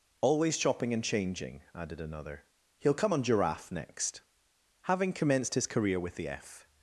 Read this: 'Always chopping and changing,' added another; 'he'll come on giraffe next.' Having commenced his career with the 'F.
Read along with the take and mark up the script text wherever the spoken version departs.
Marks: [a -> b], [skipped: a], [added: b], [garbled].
'Always chopping and changing,' added another; 'he'll come on giraffe next.' Having commenced his career with the 'F.